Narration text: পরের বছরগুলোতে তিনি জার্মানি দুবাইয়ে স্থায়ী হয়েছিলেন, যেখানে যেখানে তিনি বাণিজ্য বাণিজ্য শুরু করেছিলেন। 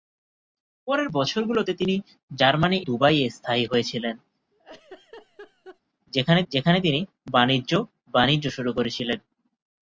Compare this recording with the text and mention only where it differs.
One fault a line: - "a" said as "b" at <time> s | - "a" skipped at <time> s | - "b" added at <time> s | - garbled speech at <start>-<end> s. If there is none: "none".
none